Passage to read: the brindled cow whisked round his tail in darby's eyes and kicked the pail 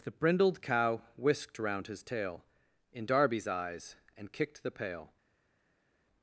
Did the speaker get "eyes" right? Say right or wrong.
right